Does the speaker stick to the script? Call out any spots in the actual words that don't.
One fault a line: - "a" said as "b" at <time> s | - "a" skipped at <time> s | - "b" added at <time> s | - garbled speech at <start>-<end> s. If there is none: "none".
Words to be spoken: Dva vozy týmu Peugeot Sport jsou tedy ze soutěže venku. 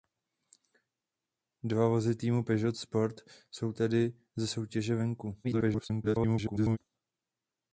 - garbled speech at 5.4-6.8 s